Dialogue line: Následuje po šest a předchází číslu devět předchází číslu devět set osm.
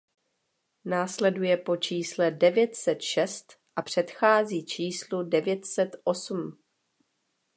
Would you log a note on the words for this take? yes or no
yes